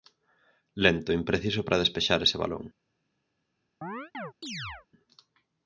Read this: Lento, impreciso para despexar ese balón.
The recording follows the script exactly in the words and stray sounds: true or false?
false